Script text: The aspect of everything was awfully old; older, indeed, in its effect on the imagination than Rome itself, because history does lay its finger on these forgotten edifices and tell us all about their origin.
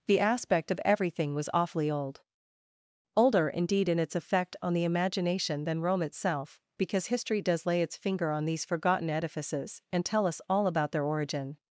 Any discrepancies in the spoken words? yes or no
no